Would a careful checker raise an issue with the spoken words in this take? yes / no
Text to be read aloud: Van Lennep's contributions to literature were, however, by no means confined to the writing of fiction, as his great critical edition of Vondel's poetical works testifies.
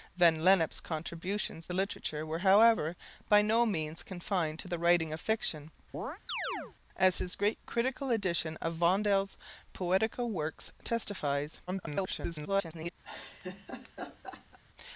yes